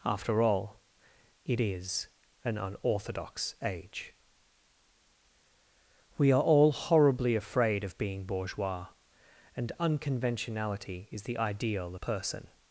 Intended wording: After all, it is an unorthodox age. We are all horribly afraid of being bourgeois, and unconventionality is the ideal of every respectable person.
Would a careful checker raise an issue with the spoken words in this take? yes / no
yes